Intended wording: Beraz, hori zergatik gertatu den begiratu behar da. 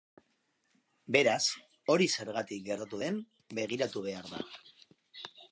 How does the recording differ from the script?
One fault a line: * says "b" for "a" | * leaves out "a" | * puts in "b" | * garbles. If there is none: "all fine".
all fine